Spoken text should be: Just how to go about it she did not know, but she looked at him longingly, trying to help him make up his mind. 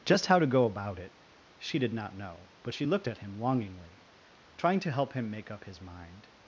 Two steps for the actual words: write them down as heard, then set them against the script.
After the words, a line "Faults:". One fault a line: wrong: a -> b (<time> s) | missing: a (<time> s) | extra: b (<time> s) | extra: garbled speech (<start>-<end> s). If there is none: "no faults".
Just how to go about it she did not know, but she looked at him longingly, trying to help him make up his mind.
Faults:
no faults